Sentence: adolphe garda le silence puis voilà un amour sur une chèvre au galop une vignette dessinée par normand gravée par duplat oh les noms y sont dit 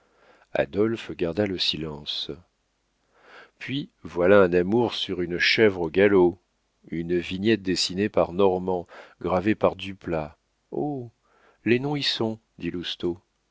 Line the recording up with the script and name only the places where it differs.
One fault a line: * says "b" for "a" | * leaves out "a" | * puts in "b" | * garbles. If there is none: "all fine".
all fine